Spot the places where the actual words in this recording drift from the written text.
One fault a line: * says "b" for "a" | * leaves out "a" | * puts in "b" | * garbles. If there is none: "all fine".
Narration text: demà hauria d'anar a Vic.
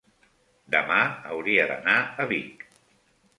all fine